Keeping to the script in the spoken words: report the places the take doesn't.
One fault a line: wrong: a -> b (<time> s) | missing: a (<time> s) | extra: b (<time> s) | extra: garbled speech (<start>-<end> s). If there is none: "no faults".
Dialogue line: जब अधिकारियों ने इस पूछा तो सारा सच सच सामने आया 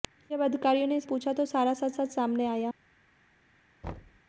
no faults